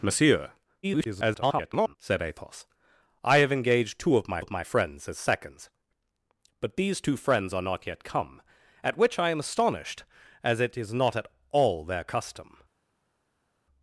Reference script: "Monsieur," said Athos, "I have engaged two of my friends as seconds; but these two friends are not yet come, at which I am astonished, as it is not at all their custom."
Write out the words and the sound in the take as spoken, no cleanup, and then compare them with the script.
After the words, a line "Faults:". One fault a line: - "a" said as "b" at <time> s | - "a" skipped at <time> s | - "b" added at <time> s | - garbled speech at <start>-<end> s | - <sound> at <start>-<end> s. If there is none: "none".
"Monsieur," [garbled] said Athos, "I have engaged two of my of my friends as seconds; but these two friends are not yet come, at which I am astonished, as it is not at all their custom."
Faults:
- garbled speech at 0.8-2.0 s
- "of my" added at 4.4 s